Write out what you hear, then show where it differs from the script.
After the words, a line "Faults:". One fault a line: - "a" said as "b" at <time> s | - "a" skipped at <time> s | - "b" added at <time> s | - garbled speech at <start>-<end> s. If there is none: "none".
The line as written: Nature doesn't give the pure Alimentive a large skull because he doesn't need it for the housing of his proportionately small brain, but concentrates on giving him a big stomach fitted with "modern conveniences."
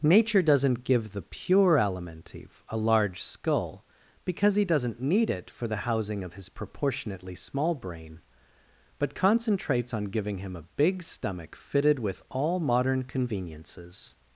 Nature doesn't give the pure Alimentive a large skull because he doesn't need it for the housing of his proportionately small brain, but concentrates on giving him a big stomach fitted with "all modern conveniences."
Faults:
- "all" added at 12.3 s